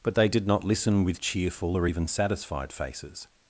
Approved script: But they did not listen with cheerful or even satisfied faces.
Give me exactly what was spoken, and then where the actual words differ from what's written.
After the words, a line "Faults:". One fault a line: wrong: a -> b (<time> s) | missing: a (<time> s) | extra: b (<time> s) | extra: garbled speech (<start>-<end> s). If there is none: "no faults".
But they did not listen with cheerful or even satisfied faces.
Faults:
no faults